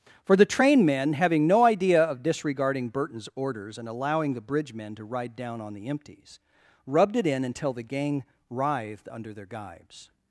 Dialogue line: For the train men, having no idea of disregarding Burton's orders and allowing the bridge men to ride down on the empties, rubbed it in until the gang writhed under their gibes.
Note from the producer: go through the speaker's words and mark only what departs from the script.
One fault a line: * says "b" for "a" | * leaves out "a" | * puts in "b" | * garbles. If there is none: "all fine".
all fine